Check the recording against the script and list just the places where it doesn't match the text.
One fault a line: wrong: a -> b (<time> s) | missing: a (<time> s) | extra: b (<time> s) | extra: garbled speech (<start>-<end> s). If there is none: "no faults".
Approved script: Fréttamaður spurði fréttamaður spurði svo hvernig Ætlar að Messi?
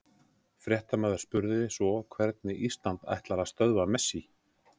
missing: fréttamaður spurði (1.6 s)
extra: Ísland (2.7 s)
extra: stöðva (3.5 s)